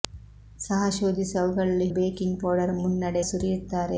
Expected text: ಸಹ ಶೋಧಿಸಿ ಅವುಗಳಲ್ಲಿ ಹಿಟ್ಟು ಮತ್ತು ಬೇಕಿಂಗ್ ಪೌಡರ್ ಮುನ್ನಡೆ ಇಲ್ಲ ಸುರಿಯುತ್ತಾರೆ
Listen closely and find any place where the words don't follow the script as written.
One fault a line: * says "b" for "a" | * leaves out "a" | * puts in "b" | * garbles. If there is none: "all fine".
* leaves out "ಹಿಟ್ಟು ಮತ್ತು"
* leaves out "ಇಲ್ಲ"